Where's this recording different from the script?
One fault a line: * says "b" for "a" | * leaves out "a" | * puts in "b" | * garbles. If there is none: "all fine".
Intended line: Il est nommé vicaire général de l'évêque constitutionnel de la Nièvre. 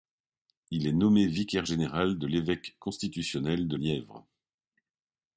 * leaves out "la"